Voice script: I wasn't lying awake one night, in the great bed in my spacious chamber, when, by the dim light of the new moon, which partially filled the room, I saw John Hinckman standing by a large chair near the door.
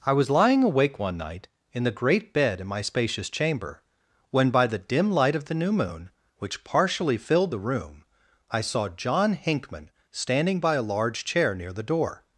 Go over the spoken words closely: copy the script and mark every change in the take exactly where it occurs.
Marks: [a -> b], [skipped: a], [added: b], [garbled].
I [wasn't -> was] lying awake one night, in the great bed in my spacious chamber, when, by the dim light of the new moon, which partially filled the room, I saw John Hinckman standing by a large chair near the door.